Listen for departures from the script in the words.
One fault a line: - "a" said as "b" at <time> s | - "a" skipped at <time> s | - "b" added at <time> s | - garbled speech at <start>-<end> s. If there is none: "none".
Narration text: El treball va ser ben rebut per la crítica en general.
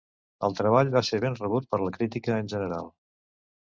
none